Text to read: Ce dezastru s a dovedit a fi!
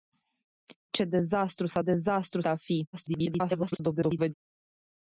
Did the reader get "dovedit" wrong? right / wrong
wrong